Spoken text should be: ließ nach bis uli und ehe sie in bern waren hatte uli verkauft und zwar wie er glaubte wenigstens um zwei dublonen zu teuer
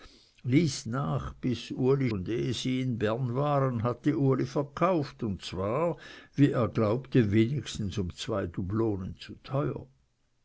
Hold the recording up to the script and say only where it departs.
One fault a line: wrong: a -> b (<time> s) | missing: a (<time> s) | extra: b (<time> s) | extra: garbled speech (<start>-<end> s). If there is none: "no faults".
no faults